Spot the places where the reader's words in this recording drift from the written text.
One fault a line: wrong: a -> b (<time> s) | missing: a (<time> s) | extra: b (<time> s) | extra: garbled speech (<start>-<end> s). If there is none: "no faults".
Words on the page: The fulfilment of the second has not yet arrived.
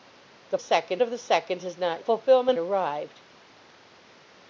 wrong: fulfilment -> second (0.6 s)
wrong: yet -> fulfilment (2.0 s)